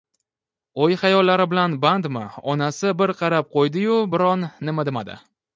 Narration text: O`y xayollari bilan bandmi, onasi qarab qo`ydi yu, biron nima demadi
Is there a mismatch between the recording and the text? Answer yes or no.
yes